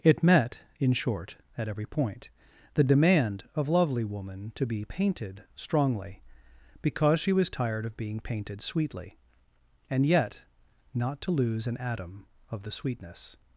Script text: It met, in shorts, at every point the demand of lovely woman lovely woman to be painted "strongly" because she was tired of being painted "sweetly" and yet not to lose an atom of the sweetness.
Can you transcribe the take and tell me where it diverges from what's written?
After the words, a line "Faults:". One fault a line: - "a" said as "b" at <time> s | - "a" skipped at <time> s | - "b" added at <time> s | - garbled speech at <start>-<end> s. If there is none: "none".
It met, in short, at every point the demand of lovely woman to be painted "strongly" because she was tired of being painted "sweetly" and yet not to lose an atom of the sweetness.
Faults:
- "shorts" said as "short" at 0.9 s
- "lovely woman" skipped at 4.5 s